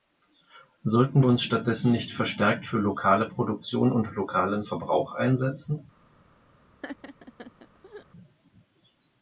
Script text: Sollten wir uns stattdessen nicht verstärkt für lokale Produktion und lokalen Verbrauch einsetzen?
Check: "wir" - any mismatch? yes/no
yes